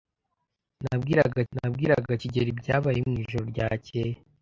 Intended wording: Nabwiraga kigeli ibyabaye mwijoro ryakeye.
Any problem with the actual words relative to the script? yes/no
yes